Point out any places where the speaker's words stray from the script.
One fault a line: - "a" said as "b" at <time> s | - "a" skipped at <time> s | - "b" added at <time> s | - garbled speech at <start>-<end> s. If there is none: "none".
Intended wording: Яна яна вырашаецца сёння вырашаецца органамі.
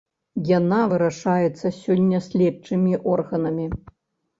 - "яна" skipped at 0.8 s
- "вырашаецца" said as "следчымі" at 2.3 s